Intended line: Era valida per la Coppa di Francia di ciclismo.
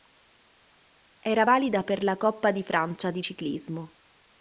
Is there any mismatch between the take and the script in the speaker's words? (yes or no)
no